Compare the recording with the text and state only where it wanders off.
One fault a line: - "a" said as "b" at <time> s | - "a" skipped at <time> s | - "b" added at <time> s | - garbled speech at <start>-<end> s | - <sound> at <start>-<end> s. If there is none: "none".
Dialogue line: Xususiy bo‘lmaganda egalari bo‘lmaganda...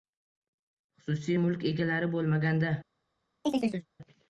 - "bo‘lmaganda" said as "mulk" at 1.4 s
- chirp at 3.4-3.9 s